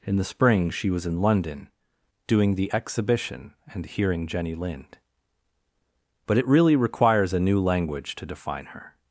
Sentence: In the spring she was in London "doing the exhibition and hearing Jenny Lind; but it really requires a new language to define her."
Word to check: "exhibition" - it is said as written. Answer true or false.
true